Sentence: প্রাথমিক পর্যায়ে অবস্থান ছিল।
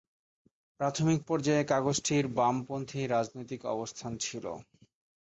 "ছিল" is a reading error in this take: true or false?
false